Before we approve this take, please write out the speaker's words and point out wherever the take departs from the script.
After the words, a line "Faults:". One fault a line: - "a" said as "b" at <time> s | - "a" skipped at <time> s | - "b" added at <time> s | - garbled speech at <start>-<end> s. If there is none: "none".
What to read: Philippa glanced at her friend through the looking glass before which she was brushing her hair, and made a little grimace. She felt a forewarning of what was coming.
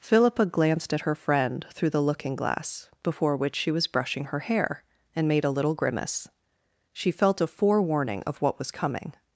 Philippa glanced at her friend through the looking glass before which she was brushing her hair, and made a little grimace. She felt a forewarning of what was coming.
Faults:
none